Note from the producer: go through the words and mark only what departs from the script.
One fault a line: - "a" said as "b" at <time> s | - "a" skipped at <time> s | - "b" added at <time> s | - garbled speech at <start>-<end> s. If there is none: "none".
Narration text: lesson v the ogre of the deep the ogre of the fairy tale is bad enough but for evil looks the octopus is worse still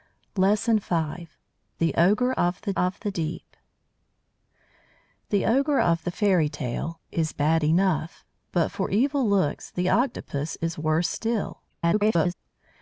- "of the" added at 2.7 s
- garbled speech at 11.7-12.3 s